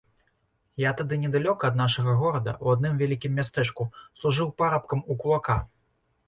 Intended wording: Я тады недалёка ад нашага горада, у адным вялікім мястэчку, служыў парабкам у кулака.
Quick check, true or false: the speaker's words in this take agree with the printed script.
true